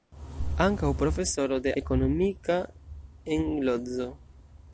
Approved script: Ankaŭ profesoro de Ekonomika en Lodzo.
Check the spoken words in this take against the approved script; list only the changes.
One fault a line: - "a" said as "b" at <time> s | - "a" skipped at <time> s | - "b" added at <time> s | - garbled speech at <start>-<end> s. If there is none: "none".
none